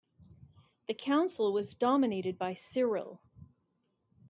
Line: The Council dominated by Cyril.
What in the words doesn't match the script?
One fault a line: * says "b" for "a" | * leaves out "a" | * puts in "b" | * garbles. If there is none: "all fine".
* puts in "was"